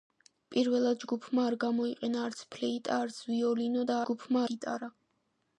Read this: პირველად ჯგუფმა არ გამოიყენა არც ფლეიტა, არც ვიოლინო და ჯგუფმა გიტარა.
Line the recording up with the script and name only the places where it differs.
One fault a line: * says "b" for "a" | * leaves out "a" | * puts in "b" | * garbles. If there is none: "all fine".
all fine